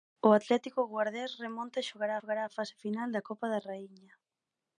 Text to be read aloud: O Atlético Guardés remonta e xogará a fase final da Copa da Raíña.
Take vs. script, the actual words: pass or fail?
fail